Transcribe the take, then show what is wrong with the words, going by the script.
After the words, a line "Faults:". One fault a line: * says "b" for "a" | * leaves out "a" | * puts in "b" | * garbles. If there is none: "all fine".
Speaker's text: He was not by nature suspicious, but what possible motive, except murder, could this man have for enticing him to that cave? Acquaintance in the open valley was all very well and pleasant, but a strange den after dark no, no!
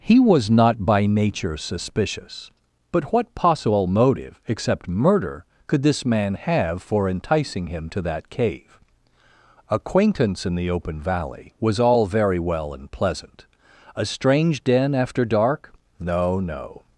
He was not by nature suspicious, but what possible motive, except murder, could this man have for enticing him to that cave? Acquaintance in the open valley was all very well and pleasant, a strange den after dark no, no!
Faults:
* leaves out "but"